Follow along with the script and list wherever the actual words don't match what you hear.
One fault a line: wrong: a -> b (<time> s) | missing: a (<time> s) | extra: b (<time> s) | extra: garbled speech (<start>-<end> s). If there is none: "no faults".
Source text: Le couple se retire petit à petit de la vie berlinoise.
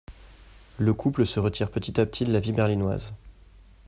no faults